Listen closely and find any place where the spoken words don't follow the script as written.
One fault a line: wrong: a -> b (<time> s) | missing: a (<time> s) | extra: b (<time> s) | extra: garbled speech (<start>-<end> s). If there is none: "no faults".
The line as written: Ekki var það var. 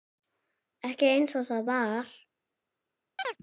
wrong: var -> einsog (1.1 s)